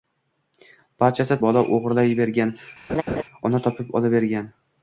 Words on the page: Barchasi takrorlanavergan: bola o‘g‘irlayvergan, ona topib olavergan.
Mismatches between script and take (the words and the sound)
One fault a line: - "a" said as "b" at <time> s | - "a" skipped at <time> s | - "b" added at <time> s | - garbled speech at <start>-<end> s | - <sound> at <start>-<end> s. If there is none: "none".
- "takrorlanavergan" skipped at 1.4 s
- laugh at 2.9-3.2 s